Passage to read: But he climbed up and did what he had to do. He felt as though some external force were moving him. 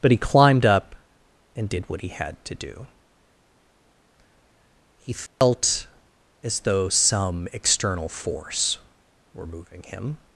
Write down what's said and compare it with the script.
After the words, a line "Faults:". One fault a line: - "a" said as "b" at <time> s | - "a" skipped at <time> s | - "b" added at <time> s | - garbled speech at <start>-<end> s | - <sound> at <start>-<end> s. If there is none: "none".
But he climbed up and did what he had to do. He felt as though some external force were moving him.
Faults:
- dropout at 5.3-5.4 s